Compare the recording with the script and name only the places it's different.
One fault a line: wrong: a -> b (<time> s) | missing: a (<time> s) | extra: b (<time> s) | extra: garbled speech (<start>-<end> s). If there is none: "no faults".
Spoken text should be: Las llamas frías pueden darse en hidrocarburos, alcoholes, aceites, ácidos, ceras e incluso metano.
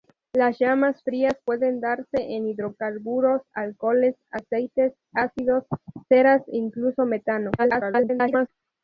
extra: garbled speech (7.6-8.5 s)